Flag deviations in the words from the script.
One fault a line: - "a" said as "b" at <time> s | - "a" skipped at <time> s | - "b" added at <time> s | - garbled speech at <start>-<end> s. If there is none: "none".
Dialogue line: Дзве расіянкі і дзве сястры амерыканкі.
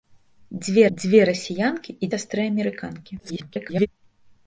- "дзве" added at 1.0 s
- "дзве" skipped at 2.1 s
- garbled speech at 3.2-3.9 s